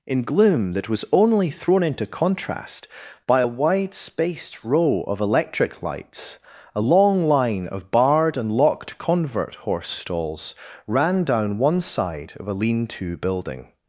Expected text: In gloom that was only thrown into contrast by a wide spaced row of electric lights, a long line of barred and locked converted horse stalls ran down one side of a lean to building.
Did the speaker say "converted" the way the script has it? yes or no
no